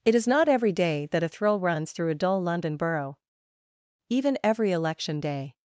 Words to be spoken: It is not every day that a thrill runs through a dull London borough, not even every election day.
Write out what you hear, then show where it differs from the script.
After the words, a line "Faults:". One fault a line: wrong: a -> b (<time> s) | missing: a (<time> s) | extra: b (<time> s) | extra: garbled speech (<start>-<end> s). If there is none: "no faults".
It is not every day that a thrill runs through a dull London borough, even every election day.
Faults:
missing: not (3.2 s)